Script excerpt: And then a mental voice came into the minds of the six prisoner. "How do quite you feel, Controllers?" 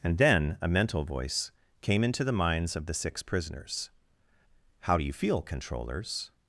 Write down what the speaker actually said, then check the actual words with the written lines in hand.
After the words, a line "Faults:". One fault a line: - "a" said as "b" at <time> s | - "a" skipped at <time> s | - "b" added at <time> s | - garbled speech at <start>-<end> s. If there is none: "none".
And then a mental voice came into the minds of the six prisoners. "How do you feel, Controllers?"
Faults:
- "prisoner" said as "prisoners" at 3.2 s
- "quite" skipped at 5.0 s